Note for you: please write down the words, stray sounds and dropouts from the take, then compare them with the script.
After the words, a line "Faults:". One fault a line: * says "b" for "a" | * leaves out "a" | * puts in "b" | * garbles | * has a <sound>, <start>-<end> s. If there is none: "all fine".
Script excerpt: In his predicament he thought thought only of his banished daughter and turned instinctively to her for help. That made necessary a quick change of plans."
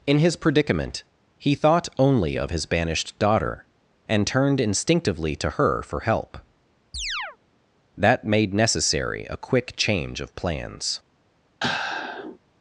In his predicament he thought only of his banished daughter and turned instinctively to her for help. That made necessary a quick change of plans."
Faults:
* leaves out "thought"
* has a chirp, 6.9-7.4 s
* has a sigh, 11.6-12.4 s